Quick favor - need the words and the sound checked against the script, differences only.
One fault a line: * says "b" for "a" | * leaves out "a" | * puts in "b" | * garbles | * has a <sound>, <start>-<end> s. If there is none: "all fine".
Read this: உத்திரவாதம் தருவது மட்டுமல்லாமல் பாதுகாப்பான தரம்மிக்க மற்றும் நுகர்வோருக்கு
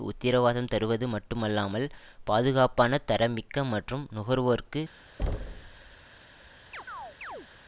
* has a thud, 5.2-6.0 s
* has a chirp, 6.7-7.5 s